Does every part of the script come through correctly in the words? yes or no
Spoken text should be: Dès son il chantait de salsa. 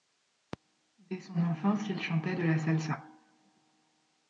no